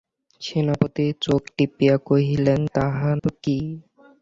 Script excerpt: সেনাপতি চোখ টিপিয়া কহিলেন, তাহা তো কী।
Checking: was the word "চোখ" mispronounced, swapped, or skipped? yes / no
no